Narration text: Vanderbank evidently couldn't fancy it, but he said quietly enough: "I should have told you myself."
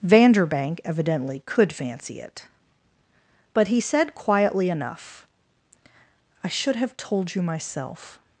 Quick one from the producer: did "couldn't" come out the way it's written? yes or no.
no